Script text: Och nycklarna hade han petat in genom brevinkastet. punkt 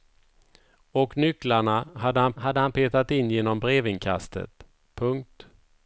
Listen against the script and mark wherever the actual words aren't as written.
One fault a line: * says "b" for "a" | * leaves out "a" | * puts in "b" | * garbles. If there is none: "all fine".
* puts in "hade han"